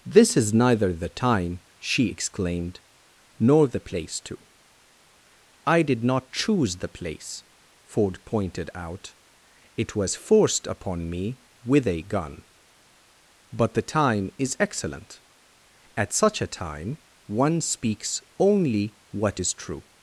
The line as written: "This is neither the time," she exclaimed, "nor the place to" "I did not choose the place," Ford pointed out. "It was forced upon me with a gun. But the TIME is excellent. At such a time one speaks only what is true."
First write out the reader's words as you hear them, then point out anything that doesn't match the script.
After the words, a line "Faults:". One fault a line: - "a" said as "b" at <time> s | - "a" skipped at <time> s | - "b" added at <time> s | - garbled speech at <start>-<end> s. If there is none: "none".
"This is neither the time," she exclaimed, "nor the place to" "I did not choose the place," Ford pointed out. "It was forced upon me with a gun. But the TIME is excellent. At such a time one speaks only what is true."
Faults:
none